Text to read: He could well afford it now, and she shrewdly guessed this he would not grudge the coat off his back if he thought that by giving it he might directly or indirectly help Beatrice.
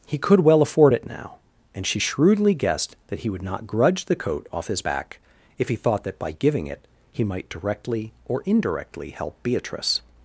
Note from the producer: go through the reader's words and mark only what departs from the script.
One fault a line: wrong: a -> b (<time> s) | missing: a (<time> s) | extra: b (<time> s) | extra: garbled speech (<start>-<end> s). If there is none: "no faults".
wrong: this -> that (3.1 s)